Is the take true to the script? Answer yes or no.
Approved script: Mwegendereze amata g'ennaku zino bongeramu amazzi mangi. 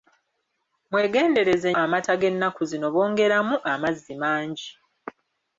yes